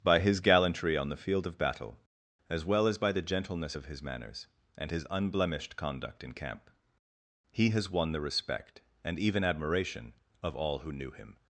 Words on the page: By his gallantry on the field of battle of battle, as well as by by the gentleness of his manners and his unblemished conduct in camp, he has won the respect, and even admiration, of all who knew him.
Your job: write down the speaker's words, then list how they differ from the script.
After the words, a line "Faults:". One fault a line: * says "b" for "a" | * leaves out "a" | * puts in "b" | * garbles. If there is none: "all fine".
By his gallantry on the field of battle, as well as by the gentleness of his manners and his unblemished conduct in camp, he has won the respect, and even admiration, of all who knew him.
Faults:
* leaves out "of battle"
* leaves out "by"